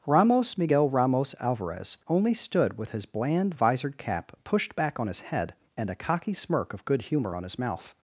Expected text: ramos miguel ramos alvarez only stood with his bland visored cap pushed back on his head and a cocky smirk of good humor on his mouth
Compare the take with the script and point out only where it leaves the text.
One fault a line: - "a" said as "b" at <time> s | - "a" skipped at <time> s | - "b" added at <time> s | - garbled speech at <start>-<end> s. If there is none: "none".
none